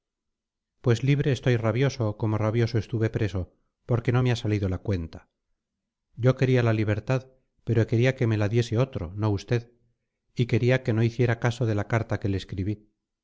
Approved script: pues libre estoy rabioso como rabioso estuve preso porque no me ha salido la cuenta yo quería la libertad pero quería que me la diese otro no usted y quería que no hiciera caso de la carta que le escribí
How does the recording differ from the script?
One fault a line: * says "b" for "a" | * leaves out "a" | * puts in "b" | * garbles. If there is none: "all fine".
all fine